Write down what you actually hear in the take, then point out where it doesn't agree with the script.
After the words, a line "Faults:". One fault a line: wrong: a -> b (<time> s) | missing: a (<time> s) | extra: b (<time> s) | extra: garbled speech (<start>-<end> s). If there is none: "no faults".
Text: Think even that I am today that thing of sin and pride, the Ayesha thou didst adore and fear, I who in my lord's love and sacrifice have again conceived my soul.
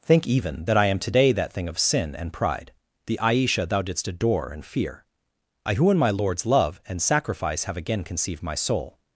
Think even that I am today that thing of sin and pride, the Ayesha thou didst adore and fear, I who in my lord's love and sacrifice have again conceived my soul.
Faults:
no faults